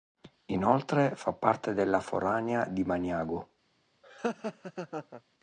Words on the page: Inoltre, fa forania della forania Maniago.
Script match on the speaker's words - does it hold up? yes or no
no